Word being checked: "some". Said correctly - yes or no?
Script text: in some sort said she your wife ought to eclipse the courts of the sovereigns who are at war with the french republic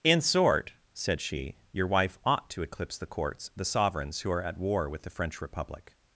no